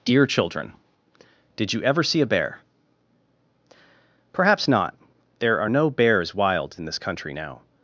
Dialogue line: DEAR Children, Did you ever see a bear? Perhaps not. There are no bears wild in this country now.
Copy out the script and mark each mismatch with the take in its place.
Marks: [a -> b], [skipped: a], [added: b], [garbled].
DEAR Children, Did you ever see a bear? Perhaps not. There are no bears wild in this country now.